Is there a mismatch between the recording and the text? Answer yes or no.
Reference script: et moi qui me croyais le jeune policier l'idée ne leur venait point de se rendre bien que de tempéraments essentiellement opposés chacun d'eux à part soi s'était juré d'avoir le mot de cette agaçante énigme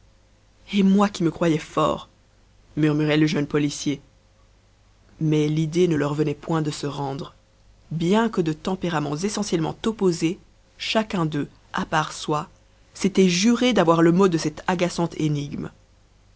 yes